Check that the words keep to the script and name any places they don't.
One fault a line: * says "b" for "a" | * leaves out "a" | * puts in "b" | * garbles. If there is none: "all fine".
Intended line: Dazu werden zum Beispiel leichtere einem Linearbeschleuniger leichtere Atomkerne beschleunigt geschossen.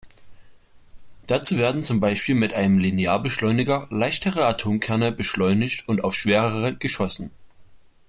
* says "mit" for "leichtere"
* puts in "und auf schwerere"